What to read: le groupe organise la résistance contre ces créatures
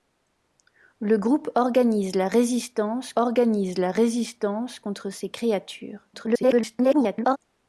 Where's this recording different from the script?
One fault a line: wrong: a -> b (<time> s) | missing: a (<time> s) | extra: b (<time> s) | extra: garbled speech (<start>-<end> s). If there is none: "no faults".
extra: organise la résistance (3.1 s)
extra: garbled speech (6.1-7.4 s)